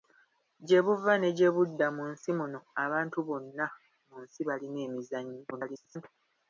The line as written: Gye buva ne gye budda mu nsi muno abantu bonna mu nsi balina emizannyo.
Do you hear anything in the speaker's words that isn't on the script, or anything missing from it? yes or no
yes